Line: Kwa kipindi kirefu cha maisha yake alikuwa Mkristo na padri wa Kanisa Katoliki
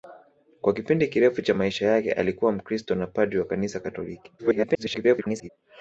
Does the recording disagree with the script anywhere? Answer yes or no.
yes